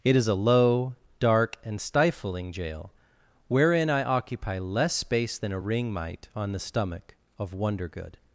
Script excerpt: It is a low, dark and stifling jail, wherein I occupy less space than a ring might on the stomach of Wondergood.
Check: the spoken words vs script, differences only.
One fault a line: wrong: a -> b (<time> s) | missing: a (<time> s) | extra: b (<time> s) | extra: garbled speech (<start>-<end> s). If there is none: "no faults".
no faults